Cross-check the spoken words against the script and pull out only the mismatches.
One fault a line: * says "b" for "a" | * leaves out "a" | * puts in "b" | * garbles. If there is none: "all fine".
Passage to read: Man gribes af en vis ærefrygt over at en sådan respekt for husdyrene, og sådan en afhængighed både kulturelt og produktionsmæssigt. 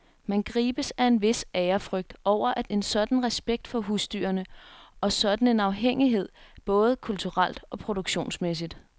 all fine